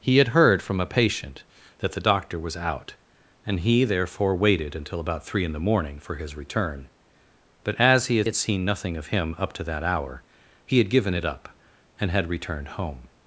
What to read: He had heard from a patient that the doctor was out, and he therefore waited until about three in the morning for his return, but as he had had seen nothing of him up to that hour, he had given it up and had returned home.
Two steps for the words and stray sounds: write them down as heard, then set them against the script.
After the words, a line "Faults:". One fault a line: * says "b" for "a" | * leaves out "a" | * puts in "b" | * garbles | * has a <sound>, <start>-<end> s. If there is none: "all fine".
He had heard from a patient that the doctor was out, and he therefore waited until about three in the morning for his return, but as he had had seen nothing of him up to that hour, he had given it up and had returned home.
Faults:
all fine